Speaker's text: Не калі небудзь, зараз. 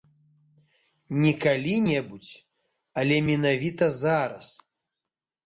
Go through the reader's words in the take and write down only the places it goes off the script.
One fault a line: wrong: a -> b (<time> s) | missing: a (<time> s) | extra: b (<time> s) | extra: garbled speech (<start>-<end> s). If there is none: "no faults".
extra: але менавіта (3.0 s)